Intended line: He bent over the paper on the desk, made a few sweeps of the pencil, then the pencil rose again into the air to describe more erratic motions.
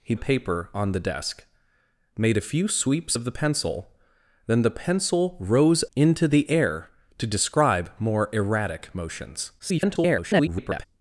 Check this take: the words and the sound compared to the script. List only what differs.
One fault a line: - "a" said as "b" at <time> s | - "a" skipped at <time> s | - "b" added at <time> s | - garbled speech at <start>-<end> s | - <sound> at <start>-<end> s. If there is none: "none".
- "bent over the" skipped at 0.1 s
- "again" skipped at 5.8 s
- garbled speech at 9.6-10.8 s